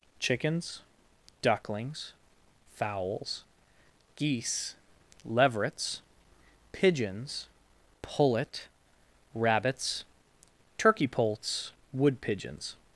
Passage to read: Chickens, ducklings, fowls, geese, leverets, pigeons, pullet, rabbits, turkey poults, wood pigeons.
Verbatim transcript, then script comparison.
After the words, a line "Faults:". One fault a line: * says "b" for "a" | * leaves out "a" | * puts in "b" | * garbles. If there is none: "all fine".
Chickens, ducklings, fowls, geese, leverets, pigeons, pullet, rabbits, turkey poults, wood pigeons.
Faults:
all fine